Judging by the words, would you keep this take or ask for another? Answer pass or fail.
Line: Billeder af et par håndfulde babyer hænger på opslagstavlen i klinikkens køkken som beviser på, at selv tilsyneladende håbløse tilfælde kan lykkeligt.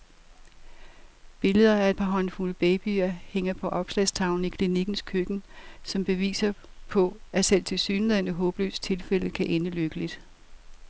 fail